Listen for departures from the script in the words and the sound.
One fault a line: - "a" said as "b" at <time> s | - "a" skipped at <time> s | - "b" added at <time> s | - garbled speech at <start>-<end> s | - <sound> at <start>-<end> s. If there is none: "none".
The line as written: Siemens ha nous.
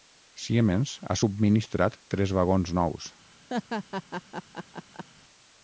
- "subministrat tres vagons" added at 1.2 s
- laugh at 3.5-5.0 s